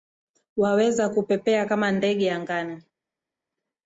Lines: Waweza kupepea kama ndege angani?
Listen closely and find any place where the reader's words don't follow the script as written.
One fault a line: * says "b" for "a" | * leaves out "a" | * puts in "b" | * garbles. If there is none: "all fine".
all fine